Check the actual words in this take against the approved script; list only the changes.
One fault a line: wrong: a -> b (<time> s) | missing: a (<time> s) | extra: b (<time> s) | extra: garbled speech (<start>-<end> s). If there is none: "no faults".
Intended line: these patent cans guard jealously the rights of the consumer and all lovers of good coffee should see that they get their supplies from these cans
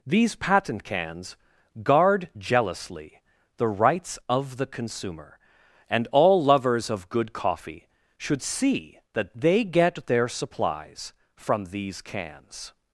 no faults